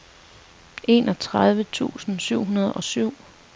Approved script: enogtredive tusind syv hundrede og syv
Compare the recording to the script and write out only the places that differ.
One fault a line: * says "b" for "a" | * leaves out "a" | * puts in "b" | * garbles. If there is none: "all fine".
all fine